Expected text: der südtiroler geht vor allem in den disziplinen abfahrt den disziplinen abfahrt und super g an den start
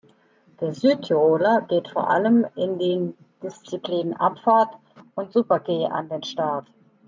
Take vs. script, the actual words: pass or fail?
fail